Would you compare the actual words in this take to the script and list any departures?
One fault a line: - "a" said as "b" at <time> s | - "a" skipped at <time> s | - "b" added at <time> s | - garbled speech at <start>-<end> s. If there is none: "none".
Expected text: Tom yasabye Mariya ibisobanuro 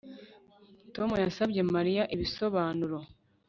none